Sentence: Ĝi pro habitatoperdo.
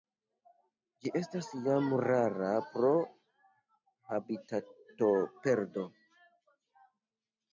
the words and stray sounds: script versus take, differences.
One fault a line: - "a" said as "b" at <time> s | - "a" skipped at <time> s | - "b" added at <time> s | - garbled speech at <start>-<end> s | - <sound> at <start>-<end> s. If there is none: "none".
- "estas jam rara" added at 1.2 s